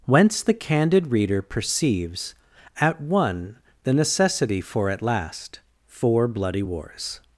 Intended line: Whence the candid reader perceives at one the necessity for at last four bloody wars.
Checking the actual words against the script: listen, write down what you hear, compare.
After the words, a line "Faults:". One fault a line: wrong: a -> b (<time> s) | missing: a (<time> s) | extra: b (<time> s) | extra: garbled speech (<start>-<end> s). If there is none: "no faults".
Whence the candid reader perceives at one the necessity for at last four bloody wars.
Faults:
no faults